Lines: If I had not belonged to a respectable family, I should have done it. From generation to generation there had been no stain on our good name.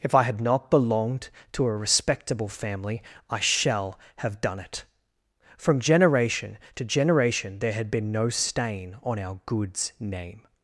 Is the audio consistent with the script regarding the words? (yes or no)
no